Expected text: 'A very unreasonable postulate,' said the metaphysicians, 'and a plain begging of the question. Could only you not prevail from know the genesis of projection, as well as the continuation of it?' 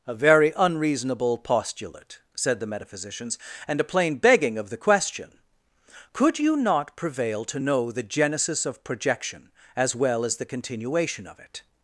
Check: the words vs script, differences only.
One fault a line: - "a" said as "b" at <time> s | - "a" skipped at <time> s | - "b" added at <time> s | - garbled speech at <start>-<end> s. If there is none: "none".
- "only" skipped at 6.4 s
- "from" said as "to" at 7.5 s